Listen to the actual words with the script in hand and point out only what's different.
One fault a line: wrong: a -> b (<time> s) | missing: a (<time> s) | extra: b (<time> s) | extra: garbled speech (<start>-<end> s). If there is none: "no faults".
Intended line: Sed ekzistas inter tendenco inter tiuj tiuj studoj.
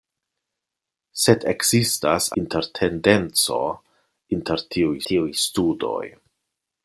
no faults